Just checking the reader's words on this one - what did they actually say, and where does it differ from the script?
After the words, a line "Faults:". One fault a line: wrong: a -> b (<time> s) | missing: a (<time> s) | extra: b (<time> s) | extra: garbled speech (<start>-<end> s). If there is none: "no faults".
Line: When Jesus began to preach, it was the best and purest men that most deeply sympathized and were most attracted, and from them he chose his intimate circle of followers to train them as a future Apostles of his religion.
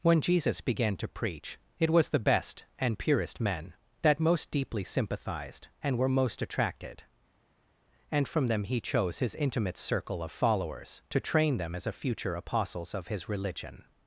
When Jesus began to preach, it was the best and purest men that most deeply sympathized and were most attracted, and from them he chose his intimate circle of followers to train them as a future Apostles of his religion.
Faults:
no faults